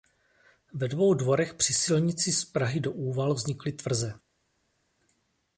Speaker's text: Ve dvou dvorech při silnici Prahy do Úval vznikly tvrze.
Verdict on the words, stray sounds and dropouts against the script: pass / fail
fail